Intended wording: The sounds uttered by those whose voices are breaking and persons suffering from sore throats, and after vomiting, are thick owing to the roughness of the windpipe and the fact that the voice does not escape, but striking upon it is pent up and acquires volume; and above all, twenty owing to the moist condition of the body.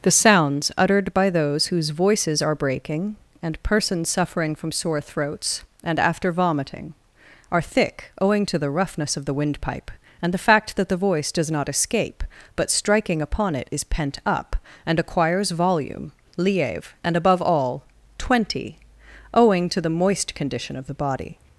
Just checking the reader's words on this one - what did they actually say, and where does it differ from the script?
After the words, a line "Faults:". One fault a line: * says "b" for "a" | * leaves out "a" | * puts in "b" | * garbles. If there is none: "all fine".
The sounds uttered by those whose voices are breaking and persons suffering from sore throats, and after vomiting, are thick owing to the roughness of the windpipe and the fact that the voice does not escape, but striking upon it is pent up and acquires volume; lieve and above all, twenty owing to the moist condition of the body.
Faults:
* puts in "lieve"